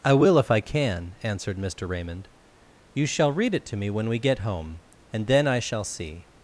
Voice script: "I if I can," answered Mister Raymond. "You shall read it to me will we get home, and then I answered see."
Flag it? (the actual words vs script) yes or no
yes